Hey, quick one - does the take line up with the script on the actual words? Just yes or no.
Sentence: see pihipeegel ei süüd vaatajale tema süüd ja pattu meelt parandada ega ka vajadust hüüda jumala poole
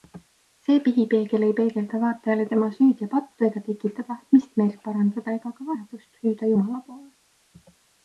no